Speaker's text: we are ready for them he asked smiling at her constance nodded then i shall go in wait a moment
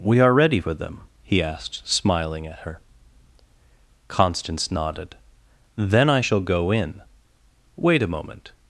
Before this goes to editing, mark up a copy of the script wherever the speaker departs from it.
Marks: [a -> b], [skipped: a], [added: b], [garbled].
we are ready for them he asked smiling at her constance nodded then i shall go in wait a moment